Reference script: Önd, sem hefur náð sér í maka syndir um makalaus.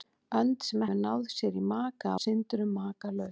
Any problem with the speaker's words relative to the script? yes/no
no